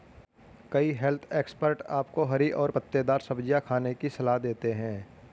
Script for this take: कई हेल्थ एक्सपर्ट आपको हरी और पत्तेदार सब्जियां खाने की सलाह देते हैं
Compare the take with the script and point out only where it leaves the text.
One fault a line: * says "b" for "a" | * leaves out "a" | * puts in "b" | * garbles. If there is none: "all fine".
all fine